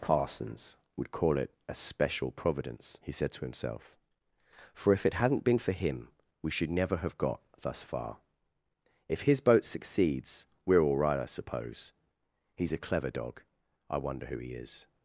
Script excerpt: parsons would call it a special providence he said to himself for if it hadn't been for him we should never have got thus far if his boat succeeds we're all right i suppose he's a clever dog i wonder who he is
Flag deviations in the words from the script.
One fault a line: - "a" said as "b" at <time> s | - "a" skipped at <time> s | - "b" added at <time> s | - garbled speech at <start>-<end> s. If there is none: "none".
none